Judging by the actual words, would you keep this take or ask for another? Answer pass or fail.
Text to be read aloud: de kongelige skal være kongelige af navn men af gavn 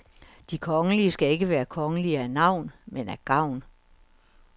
fail